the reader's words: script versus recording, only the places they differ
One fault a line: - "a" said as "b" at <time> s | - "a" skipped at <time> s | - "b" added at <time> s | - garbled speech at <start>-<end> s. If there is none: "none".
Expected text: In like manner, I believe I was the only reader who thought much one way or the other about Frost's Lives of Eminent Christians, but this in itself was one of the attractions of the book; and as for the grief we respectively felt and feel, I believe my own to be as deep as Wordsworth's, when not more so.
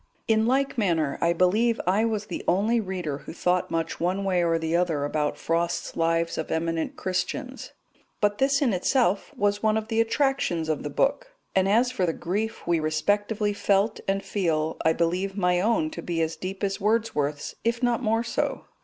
- "when" said as "if" at 17.6 s